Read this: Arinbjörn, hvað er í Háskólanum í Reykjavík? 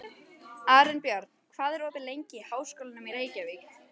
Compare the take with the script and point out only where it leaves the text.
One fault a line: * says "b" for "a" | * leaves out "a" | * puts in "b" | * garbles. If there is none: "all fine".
* puts in "opið lengi"